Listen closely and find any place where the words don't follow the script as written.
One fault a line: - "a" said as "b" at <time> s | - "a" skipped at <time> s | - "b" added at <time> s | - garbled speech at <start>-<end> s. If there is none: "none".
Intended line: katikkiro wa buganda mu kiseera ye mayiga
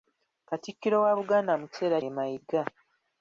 none